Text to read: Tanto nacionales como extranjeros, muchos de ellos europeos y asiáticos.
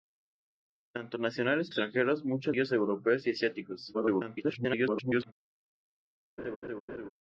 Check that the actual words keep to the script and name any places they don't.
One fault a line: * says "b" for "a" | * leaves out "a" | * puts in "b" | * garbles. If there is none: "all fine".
* leaves out "como"
* leaves out "de"
* garbles